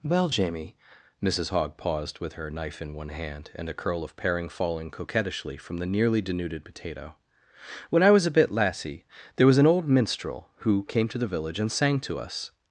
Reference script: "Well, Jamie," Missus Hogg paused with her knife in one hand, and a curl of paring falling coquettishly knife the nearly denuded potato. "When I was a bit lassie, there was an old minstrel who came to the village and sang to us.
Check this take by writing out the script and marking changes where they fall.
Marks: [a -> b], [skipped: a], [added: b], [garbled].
"Well, Jamie," Missus Hogg paused with her knife in one hand, and a curl of paring falling coquettishly [knife -> from] the nearly denuded potato. "When I was a bit lassie, there was an old minstrel who came to the village and sang to us.